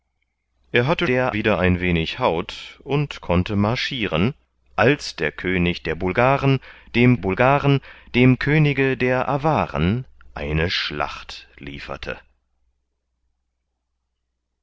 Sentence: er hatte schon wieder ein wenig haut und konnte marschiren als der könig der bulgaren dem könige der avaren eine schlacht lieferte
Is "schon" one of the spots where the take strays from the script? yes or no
yes